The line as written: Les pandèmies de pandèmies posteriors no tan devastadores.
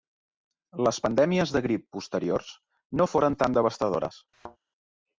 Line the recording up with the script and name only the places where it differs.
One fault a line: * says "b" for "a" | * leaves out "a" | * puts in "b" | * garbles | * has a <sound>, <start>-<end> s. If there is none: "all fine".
* says "grip" for "pandèmies"
* puts in "foren"
* has a thud, 4.3-4.6 s